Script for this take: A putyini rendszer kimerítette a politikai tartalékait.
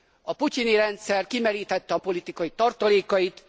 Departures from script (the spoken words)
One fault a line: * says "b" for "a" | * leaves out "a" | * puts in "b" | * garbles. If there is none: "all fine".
all fine